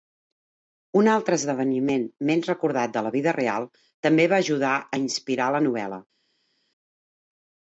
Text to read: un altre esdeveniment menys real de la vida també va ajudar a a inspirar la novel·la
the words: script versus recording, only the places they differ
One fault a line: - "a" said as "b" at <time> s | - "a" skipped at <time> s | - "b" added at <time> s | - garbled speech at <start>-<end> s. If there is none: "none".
- "real" said as "recordat" at 2.5 s
- "real" added at 3.4 s
- "a" skipped at 5.0 s